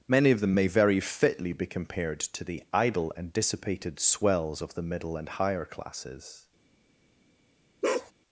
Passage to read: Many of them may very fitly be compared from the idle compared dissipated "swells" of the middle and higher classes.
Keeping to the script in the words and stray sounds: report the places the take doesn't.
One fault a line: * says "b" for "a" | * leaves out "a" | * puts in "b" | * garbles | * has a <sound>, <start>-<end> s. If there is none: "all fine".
* says "to" for "from"
* says "and" for "compared"
* has a bark, 7.8-8.1 s